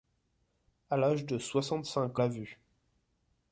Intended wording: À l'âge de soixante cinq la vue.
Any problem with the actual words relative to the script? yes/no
no